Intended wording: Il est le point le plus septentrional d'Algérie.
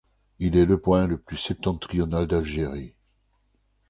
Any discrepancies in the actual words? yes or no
no